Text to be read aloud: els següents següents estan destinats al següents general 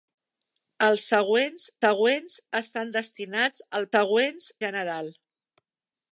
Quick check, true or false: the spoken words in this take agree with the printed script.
true